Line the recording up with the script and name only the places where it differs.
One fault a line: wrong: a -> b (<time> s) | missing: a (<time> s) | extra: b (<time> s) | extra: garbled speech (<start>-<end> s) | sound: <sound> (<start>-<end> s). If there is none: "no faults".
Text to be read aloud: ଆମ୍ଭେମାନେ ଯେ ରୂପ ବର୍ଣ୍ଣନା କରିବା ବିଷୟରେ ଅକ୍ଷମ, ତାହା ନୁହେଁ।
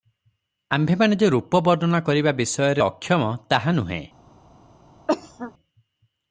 sound: cough (5.1-5.5 s)